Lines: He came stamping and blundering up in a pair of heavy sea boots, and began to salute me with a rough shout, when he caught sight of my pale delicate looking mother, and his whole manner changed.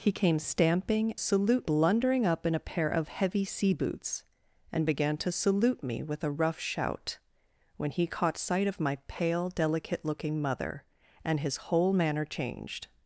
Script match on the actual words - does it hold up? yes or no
no